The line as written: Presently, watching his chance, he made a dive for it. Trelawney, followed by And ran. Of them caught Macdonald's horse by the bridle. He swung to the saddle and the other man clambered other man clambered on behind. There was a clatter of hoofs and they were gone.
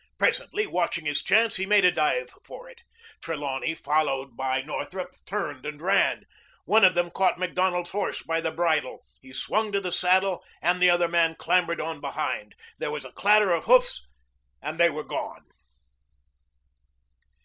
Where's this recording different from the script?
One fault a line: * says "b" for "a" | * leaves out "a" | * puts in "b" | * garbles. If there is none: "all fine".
* puts in "Northrup turned"
* puts in "One"
* leaves out "other man clambered"